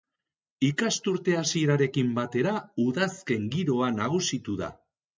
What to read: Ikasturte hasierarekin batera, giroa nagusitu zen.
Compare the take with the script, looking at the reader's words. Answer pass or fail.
fail